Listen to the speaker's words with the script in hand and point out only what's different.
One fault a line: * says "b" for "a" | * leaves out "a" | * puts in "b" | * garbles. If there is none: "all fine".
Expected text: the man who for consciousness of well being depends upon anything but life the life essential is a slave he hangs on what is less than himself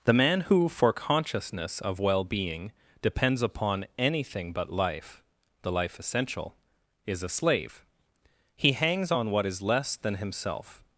all fine